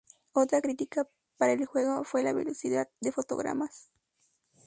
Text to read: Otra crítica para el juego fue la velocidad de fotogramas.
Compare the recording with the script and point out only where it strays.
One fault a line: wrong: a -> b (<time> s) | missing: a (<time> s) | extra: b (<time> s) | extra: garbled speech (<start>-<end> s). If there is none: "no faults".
no faults